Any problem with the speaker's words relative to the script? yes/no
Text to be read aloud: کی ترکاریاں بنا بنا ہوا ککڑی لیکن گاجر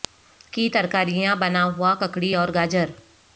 yes